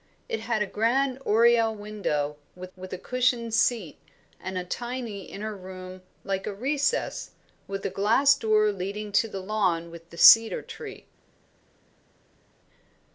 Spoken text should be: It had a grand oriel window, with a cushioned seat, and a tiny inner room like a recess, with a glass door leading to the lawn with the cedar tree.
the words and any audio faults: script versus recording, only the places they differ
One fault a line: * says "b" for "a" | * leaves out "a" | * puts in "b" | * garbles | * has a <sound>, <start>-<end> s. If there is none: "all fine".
* puts in "with"